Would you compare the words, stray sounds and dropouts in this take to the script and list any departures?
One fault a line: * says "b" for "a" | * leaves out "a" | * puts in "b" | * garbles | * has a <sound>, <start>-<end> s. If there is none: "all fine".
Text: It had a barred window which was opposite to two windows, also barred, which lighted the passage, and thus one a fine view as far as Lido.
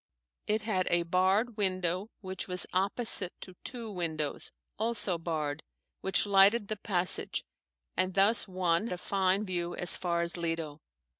all fine